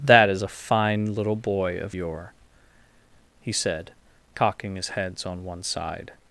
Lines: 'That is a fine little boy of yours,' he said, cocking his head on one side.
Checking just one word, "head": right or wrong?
wrong